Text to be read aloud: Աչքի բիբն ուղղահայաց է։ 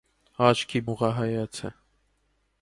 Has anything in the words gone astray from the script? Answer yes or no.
yes